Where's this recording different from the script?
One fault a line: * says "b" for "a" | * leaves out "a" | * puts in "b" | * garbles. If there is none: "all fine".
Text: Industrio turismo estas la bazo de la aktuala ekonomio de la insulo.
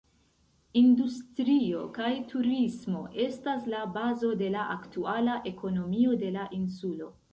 * puts in "kaj"